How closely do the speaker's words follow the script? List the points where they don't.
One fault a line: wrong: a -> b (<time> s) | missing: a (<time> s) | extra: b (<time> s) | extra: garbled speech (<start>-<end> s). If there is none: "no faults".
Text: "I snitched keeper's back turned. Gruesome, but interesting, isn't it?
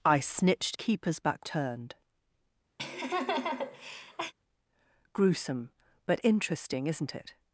no faults